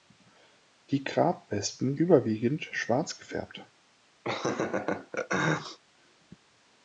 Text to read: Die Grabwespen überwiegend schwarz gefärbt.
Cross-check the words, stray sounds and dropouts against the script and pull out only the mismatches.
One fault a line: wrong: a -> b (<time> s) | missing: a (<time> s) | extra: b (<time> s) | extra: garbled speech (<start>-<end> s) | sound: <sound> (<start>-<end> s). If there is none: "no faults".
sound: laugh (4.2-5.8 s)